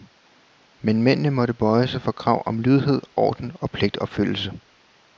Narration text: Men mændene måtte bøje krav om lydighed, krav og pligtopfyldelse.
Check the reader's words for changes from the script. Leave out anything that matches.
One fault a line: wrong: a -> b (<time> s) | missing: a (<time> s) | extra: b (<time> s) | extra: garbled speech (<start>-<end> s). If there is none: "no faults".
extra: sig for (1.9 s)
wrong: krav -> orden (3.1 s)